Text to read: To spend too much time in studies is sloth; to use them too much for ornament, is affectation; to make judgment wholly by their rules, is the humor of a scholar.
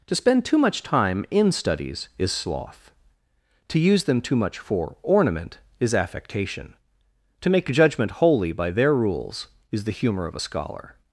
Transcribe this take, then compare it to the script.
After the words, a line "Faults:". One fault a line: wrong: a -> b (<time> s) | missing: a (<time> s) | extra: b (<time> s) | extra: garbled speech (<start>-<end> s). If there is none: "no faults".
To spend too much time in studies is sloth; to use them too much for ornament, is affectation; to make judgment wholly by their rules, is the humor of a scholar.
Faults:
no faults